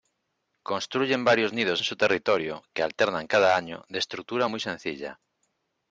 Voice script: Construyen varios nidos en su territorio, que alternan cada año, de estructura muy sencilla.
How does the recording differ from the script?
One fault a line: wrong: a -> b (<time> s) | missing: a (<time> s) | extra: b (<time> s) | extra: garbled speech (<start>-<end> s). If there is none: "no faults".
no faults